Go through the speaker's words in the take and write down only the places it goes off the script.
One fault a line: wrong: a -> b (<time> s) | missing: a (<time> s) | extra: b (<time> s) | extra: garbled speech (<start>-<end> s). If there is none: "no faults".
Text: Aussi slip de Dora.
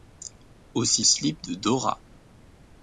no faults